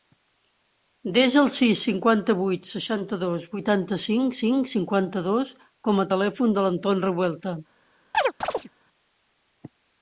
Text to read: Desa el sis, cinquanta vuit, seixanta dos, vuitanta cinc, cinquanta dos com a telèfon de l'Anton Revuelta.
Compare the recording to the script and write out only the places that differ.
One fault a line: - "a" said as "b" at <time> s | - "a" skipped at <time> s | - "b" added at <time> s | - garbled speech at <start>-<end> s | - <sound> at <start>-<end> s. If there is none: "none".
- "cinc" added at 4.4 s
- chirp at 8.1-8.7 s